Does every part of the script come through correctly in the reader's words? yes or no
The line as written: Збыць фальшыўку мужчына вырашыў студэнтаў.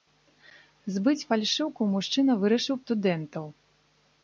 yes